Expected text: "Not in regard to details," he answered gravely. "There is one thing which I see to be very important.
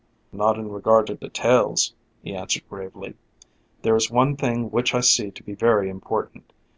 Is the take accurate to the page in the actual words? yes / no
yes